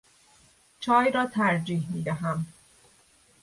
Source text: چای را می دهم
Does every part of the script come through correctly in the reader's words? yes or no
no